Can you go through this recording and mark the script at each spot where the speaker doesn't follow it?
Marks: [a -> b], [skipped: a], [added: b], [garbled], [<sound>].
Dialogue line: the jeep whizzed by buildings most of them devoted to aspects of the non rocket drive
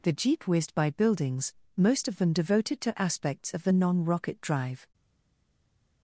the jeep whizzed by buildings most of them devoted to aspects of the non rocket drive